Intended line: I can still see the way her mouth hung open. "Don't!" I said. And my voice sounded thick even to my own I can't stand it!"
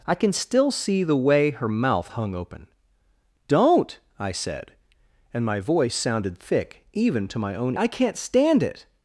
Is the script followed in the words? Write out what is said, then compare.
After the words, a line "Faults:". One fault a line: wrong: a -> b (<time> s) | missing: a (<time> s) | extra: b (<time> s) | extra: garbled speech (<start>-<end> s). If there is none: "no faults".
I can still see the way her mouth hung open. "Don't!" I said. And my voice sounded thick even to my own I can't stand it!"
Faults:
no faults